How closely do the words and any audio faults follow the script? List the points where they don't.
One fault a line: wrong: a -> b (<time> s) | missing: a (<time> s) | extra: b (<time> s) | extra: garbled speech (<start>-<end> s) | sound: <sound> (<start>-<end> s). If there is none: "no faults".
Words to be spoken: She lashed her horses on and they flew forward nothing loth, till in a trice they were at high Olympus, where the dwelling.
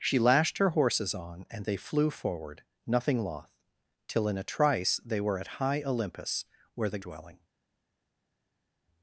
no faults